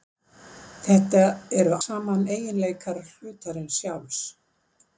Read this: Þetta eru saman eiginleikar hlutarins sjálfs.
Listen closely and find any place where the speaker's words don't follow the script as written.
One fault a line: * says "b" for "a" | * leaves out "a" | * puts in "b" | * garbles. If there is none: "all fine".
all fine